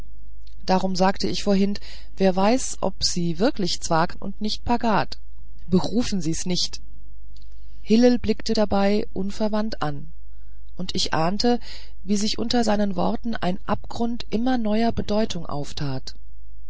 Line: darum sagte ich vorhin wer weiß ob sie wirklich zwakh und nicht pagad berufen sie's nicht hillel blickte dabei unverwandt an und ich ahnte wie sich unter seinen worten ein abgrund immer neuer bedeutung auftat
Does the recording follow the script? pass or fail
pass